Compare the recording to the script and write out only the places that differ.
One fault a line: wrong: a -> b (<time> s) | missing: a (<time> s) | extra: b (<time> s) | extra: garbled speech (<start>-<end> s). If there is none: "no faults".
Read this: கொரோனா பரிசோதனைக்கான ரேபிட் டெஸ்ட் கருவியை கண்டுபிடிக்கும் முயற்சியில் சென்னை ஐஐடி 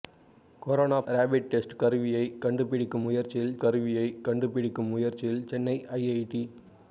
missing: பரிசோதனைக்கான (1.0 s)
extra: கருவியை கண்டுபிடிக்கும் முயற்சியில் (3.6 s)